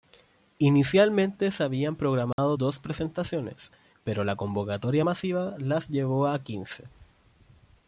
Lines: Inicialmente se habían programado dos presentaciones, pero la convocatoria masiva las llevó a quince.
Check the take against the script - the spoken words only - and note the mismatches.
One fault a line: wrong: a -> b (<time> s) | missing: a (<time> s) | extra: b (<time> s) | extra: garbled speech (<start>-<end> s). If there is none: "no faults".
no faults